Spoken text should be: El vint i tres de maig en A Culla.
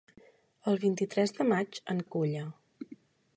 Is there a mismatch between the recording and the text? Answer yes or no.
no